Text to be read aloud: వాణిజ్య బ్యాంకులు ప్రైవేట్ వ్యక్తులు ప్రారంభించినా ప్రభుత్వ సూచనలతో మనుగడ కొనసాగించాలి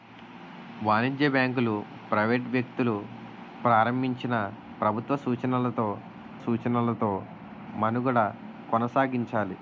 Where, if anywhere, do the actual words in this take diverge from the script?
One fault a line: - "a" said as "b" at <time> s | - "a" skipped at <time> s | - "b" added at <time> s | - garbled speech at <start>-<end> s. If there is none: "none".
- "సూచనలతో" added at 6.4 s